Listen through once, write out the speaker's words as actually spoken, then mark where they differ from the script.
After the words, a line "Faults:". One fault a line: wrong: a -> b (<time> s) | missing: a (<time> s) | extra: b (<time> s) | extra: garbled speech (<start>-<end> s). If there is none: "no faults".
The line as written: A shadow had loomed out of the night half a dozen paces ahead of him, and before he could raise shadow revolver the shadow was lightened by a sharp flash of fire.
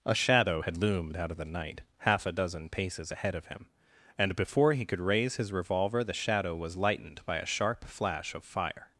A shadow had loomed out of the night half a dozen paces ahead of him, and before he could raise his revolver the shadow was lightened by a sharp flash of fire.
Faults:
wrong: shadow -> his (5.4 s)